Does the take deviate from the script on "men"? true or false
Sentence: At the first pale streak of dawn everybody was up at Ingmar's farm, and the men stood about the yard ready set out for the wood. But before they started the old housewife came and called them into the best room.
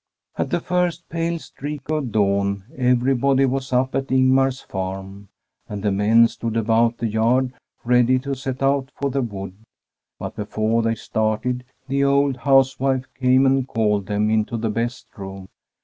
false